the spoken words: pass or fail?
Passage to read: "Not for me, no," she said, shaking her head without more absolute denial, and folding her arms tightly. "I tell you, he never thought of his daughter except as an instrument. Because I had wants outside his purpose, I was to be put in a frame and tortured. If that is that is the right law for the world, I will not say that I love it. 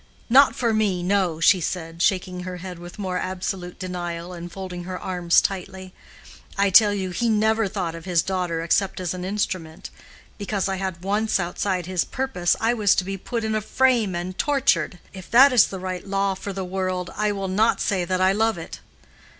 fail